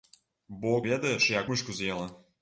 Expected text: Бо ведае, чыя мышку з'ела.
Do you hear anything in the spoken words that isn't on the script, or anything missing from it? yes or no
no